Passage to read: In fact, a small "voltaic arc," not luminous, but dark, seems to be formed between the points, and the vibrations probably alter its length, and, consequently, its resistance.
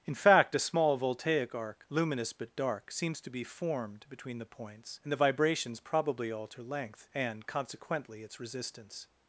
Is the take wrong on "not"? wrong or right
wrong